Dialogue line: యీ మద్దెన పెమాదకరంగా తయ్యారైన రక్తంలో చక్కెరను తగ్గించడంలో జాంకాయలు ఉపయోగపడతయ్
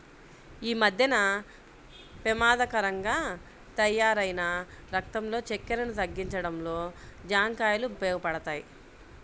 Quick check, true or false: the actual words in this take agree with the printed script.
true